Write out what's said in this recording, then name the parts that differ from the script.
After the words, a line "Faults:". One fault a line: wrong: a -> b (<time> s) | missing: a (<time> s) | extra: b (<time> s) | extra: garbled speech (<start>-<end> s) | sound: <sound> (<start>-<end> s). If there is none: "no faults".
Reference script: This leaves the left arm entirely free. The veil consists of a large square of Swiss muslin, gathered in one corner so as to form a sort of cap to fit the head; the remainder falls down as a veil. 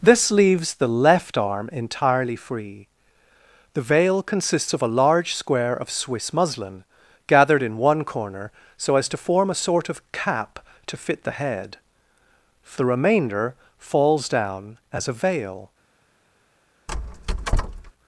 This leaves the left arm entirely free. The veil consists of a large square of Swiss muslin, gathered in one corner so as to form a sort of cap to fit the head; the remainder falls down as a veil.
Faults:
sound: squeak (16.9-17.9 s)